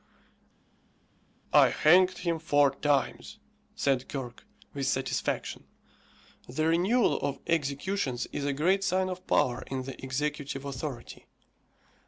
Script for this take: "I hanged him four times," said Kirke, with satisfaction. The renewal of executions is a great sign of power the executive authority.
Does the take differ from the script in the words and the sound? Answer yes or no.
yes